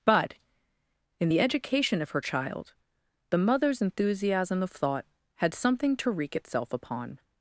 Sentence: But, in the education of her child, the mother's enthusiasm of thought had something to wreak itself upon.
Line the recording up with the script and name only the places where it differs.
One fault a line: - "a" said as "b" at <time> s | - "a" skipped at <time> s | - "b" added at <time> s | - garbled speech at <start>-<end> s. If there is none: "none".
none